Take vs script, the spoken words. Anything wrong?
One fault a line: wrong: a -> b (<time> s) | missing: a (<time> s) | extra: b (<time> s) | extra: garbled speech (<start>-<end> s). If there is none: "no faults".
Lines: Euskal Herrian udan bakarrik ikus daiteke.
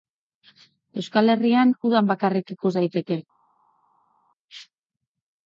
no faults